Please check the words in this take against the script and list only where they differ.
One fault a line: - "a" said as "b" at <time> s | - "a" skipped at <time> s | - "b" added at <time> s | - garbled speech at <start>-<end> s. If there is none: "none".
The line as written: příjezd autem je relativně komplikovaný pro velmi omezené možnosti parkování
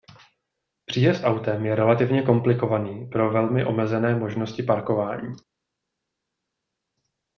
none